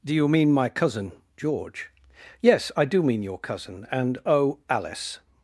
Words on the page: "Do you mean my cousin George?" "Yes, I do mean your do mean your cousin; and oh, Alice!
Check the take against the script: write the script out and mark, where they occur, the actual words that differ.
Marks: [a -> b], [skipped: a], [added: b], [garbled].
"Do you mean my cousin George?" "Yes, I do mean your [skipped: do mean your] cousin; and oh, Alice!